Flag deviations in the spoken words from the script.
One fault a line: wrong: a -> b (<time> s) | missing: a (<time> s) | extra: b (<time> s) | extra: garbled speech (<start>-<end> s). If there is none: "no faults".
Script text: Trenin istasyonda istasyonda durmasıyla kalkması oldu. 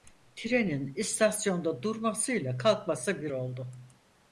missing: istasyonda (1.8 s)
extra: bir (3.2 s)